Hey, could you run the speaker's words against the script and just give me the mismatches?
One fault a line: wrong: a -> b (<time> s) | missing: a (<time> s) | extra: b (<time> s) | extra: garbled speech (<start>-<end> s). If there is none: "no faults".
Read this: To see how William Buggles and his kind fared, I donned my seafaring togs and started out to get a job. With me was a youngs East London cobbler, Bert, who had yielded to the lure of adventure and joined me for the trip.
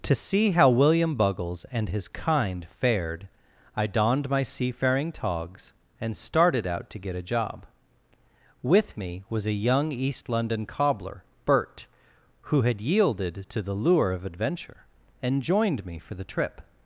wrong: youngs -> young (9.5 s)